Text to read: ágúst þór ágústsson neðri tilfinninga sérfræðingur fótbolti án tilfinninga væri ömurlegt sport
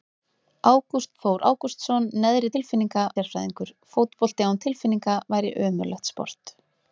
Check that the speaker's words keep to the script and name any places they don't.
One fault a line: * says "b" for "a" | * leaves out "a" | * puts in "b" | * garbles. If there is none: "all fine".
all fine